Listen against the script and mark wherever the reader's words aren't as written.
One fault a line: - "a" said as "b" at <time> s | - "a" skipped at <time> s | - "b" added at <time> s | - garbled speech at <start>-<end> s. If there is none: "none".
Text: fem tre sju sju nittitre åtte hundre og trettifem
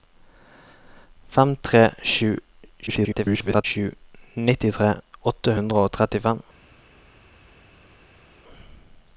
- garbled speech at 2.9-3.6 s